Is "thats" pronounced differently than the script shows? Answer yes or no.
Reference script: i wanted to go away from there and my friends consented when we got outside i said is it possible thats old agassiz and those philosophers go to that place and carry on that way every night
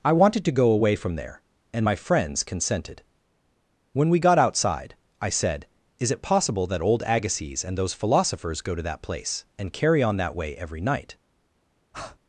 yes